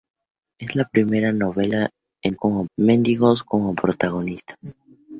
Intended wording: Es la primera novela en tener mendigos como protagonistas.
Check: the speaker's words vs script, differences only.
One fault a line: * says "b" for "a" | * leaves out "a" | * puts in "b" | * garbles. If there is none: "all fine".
* says "como" for "tener"